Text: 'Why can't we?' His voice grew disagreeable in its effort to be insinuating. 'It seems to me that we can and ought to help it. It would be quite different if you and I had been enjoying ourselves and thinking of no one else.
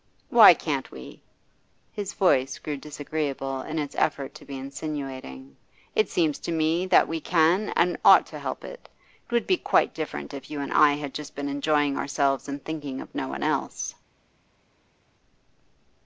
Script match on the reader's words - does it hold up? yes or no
no